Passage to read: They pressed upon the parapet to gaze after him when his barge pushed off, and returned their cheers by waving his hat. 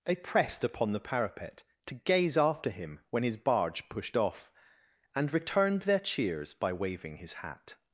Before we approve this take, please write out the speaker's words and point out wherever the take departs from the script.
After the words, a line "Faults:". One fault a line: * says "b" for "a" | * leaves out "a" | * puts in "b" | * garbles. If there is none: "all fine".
They pressed upon the parapet to gaze after him when his barge pushed off, and returned their cheers by waving his hat.
Faults:
all fine